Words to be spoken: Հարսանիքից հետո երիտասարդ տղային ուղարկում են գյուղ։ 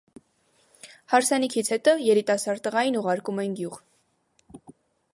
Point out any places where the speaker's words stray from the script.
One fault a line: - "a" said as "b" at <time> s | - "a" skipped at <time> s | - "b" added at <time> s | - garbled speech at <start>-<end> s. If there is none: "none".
none